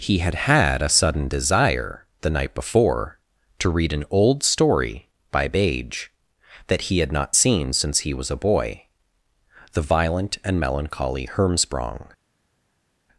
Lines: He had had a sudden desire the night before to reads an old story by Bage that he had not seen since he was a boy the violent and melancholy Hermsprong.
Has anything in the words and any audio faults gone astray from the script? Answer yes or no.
yes